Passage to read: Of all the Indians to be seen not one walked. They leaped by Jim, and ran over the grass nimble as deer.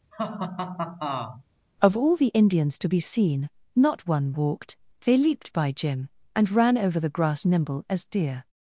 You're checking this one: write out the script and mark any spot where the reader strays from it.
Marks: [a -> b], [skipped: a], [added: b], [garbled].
Of all the Indians to be seen not one walked. They leaped by Jim, and ran over the grass nimble as deer.